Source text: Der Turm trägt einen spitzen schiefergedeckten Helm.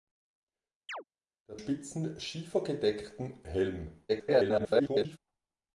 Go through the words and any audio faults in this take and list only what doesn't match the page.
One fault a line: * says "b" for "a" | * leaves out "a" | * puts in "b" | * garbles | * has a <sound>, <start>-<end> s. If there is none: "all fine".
* has a chirp, 0.9-1.0 s
* leaves out "Turm trägt einen"
* garbles